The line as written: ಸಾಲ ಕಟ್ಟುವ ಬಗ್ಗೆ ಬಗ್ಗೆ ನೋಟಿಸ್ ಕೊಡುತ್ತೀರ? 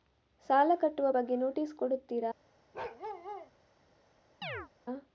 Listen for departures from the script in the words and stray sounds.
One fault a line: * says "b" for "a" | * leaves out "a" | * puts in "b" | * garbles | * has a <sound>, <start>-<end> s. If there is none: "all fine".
* leaves out "ಬಗ್ಗೆ"
* has a bark, 2.7-3.5 s
* has a chirp, 4.4-4.7 s